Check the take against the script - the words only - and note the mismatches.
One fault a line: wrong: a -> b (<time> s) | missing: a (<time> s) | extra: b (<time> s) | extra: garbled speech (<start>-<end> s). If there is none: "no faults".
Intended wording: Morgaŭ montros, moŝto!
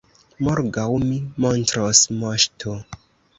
extra: mi (1.0 s)